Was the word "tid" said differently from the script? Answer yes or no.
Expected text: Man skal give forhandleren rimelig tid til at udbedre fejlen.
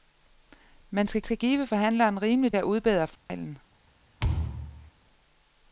yes